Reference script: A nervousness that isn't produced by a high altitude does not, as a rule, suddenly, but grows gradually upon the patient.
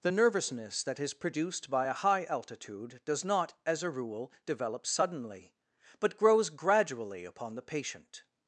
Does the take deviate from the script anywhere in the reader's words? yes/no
yes